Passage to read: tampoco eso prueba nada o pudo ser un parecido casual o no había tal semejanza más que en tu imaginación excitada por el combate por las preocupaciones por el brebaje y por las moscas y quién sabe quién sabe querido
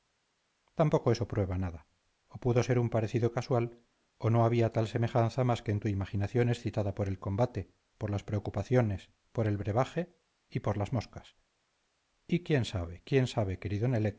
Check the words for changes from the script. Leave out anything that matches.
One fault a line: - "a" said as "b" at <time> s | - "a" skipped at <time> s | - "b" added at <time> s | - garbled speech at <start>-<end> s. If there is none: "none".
none